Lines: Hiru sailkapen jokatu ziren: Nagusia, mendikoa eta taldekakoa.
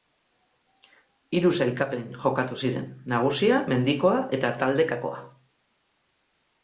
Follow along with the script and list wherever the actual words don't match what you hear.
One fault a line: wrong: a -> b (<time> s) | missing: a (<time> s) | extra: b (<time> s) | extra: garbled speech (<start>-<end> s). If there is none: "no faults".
no faults